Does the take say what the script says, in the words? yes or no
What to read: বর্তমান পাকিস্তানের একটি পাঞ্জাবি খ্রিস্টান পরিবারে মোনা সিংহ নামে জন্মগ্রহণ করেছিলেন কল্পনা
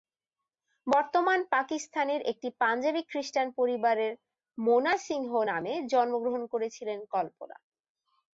yes